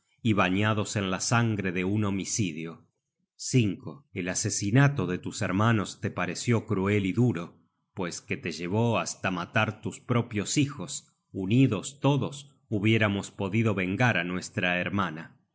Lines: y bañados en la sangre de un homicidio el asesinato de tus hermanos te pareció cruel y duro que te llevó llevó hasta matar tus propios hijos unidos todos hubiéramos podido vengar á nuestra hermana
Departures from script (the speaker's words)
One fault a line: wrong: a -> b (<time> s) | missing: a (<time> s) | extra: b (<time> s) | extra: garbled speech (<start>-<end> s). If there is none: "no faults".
extra: pues (7.9 s)
missing: llevó (9.0 s)